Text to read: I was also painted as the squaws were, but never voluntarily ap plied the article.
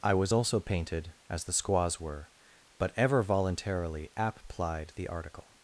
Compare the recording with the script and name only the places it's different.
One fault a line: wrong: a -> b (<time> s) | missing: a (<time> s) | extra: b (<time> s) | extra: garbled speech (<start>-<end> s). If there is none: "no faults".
wrong: never -> ever (3.0 s)